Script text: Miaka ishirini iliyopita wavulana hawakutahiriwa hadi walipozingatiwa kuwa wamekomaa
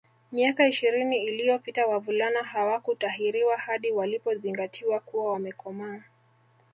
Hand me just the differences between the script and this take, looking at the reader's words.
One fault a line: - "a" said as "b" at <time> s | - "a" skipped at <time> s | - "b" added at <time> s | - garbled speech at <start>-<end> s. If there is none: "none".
none